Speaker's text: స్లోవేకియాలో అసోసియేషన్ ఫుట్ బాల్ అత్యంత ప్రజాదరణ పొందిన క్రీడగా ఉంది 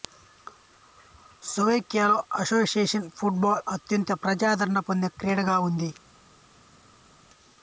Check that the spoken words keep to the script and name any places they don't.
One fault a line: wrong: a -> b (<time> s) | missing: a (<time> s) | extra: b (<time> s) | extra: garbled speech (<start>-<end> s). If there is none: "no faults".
no faults